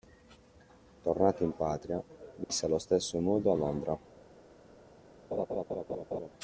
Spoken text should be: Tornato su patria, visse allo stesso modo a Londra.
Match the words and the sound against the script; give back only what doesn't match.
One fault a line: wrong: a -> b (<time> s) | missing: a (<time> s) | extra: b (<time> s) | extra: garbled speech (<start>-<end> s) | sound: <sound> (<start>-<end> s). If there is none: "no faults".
wrong: su -> in (1.4 s)
sound: dropout (2.4-2.5 s)
sound: laugh (5.3-6.3 s)